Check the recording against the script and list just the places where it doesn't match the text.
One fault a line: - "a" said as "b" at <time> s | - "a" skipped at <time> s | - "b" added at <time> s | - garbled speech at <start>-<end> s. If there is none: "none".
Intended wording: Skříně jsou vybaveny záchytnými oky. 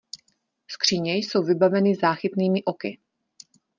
none